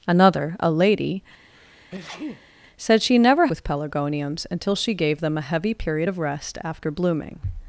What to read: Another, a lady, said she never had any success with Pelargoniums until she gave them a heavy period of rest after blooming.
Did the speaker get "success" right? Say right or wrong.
wrong